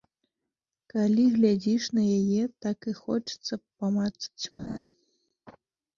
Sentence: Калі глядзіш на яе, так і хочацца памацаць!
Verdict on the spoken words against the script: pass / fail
pass